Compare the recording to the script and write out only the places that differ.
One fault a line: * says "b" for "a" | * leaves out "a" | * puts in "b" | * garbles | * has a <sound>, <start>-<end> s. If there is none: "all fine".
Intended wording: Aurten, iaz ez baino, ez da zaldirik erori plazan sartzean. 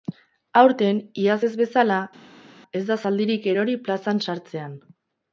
* says "bezala" for "baino"